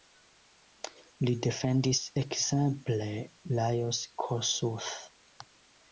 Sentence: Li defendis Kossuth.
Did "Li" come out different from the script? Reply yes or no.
no